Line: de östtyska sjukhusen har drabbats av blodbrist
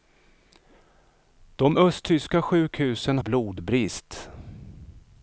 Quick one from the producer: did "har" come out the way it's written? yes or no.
no